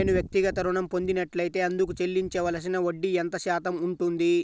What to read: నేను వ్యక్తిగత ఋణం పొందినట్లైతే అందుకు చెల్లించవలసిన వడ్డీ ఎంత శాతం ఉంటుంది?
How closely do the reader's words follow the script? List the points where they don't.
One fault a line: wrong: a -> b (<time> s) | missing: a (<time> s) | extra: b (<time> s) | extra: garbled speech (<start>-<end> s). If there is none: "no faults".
no faults